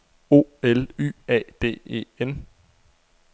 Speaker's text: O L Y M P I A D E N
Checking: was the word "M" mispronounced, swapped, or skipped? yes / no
yes